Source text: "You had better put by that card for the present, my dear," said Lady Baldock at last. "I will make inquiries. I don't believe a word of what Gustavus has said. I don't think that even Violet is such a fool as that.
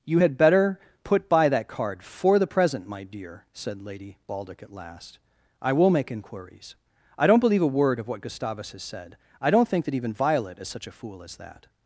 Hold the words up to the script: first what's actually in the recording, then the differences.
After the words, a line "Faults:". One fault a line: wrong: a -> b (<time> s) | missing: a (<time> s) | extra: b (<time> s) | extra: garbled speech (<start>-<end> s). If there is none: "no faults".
"You had better put by that card for the present, my dear," said Lady Baldock at last. "I will make inquiries. I don't believe a word of what Gustavus has said. I don't think that even Violet is such a fool as that.
Faults:
no faults